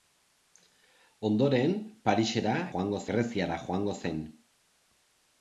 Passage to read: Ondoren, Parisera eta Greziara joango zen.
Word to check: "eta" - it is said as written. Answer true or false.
false